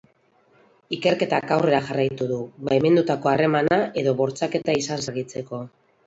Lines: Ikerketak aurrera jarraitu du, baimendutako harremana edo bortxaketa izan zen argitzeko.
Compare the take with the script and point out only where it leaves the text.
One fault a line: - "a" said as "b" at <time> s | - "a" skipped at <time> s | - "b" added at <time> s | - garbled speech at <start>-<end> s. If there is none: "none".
- "zen" skipped at 5.0 s